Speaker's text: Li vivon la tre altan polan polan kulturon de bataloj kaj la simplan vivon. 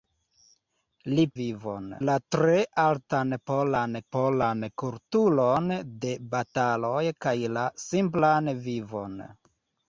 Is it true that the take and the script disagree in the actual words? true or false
false